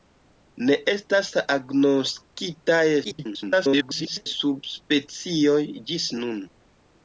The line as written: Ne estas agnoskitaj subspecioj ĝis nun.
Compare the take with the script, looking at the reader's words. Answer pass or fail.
fail